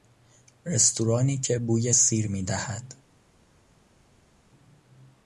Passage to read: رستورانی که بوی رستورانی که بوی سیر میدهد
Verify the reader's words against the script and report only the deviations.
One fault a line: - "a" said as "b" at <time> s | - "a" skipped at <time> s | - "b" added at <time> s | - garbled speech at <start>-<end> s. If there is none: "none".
- "رستورانی که بوی" skipped at 1.9 s